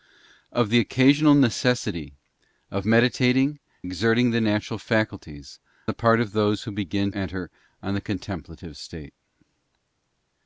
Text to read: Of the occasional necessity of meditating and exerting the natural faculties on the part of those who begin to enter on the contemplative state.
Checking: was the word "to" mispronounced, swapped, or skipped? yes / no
yes